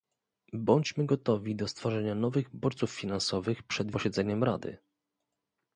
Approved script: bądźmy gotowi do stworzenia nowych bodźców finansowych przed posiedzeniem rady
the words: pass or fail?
pass